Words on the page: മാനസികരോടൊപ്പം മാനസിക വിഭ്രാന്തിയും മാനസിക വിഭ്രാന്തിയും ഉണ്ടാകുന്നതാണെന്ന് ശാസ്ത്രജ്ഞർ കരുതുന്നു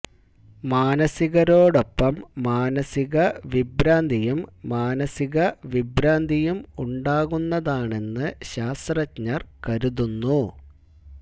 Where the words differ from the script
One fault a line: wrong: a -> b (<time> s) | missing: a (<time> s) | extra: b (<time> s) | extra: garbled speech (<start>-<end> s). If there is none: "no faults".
no faults